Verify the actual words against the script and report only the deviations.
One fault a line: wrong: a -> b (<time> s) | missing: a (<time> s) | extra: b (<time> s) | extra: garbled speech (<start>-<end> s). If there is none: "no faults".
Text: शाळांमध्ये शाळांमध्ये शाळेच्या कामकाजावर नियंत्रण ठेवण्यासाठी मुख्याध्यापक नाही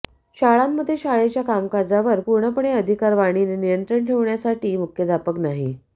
missing: शाळांमध्ये (0.9 s)
extra: पूर्णपणे अधिकार वाणीने (2.2 s)